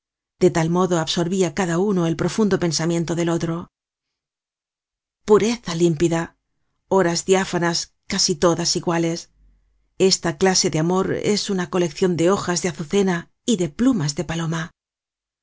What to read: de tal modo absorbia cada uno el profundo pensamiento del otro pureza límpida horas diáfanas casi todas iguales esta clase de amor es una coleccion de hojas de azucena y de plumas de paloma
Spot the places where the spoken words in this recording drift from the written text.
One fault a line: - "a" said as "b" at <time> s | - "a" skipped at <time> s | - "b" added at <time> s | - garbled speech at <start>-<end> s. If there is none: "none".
none